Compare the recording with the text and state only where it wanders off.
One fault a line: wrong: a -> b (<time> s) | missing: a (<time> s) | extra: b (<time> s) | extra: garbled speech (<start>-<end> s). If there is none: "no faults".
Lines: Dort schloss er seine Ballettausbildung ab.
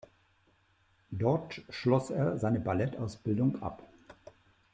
no faults